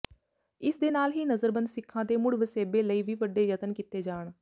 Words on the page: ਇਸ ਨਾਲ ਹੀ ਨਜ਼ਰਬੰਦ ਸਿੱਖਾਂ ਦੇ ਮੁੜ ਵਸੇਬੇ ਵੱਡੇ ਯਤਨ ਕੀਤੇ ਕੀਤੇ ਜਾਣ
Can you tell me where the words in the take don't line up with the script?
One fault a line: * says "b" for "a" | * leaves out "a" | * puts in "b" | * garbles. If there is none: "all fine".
* puts in "ਦੇ"
* puts in "ਲਈ ਵੀ"
* leaves out "ਕੀਤੇ"